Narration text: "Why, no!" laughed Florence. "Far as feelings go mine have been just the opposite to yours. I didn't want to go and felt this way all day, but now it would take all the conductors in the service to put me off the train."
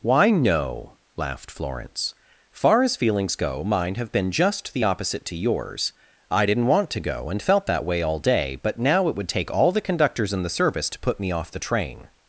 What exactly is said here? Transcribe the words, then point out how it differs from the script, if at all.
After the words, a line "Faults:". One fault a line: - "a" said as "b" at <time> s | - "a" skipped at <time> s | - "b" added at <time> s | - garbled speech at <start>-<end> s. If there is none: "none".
"Why, no!" laughed Florence. "Far as feelings go mine have been just the opposite to yours. I didn't want to go and felt that way all day, but now it would take all the conductors in the service to put me off the train."
Faults:
- "this" said as "that" at 7.7 s